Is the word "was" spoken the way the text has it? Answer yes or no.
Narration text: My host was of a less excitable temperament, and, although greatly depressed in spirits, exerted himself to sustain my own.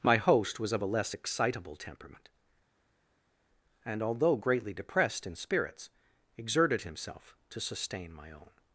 yes